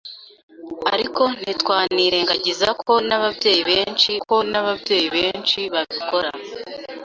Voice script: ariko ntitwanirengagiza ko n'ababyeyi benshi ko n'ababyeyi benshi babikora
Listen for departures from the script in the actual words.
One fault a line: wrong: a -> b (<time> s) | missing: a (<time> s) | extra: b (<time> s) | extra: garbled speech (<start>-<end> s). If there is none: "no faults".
no faults